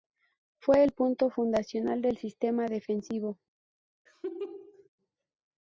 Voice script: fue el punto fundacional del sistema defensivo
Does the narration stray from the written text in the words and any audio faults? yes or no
yes